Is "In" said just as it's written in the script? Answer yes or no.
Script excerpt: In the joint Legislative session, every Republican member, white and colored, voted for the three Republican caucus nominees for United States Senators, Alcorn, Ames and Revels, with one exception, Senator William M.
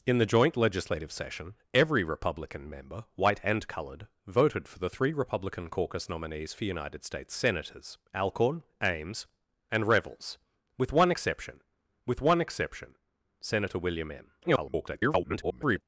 yes